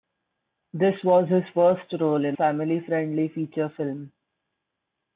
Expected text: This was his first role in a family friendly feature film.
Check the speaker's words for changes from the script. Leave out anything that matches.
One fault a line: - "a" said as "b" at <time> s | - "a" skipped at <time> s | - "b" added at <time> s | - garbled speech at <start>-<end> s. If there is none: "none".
- "a" skipped at 2.4 s